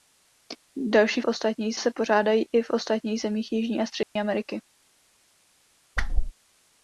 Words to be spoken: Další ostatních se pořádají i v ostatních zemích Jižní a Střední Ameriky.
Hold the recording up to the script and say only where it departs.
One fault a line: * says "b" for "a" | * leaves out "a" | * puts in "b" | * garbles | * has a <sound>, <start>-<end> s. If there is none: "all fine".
* has a dropout, 4.0-4.2 s
* has a whoosh, 6.0-6.3 s